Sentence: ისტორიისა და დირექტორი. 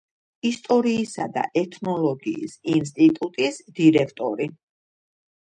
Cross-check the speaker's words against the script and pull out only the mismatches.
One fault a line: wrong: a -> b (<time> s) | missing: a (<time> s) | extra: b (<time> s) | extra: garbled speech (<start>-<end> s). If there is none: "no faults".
extra: ეთნოლოგიის ინსტიტუტის (1.6 s)